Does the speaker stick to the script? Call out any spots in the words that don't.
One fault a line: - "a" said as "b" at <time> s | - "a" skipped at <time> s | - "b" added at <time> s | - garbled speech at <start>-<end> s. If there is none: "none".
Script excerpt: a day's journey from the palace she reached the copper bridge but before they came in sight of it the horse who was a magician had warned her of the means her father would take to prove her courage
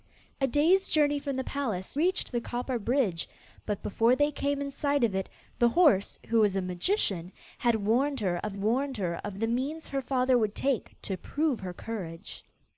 - "she" skipped at 1.9 s
- "warned her of" added at 8.6 s